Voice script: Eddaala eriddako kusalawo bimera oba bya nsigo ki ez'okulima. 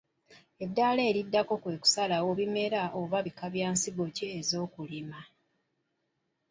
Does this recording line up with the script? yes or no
no